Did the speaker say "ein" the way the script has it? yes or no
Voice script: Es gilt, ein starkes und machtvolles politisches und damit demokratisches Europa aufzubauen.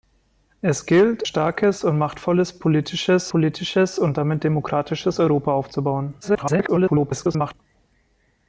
no